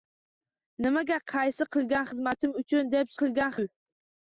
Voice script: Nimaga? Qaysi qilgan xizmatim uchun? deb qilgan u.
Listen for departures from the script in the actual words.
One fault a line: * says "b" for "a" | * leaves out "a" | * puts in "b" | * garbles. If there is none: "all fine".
all fine